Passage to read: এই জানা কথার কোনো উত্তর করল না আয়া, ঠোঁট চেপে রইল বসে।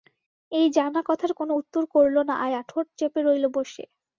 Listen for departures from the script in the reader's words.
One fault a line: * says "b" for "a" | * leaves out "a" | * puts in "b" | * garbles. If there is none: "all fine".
all fine